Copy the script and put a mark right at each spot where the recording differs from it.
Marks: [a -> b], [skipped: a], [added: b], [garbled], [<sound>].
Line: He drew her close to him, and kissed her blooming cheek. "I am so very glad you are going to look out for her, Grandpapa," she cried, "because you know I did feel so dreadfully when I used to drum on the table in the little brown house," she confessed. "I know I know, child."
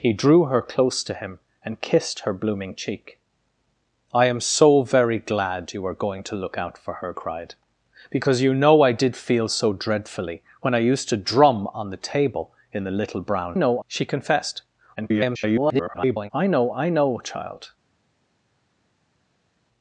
He drew her close to him, and kissed her blooming cheek. "I am so very glad you are going to look out for her, [skipped: Grandpapa," she] cried, "because you know I did feel so dreadfully when I used to drum on the table in the little brown [house," -> know] she confessed. [garbled] "I know I know, child."